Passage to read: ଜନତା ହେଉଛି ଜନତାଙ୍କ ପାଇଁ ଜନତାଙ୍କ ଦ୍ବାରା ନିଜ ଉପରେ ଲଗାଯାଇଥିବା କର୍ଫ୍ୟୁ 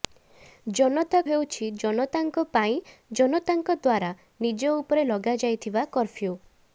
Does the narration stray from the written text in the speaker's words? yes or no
no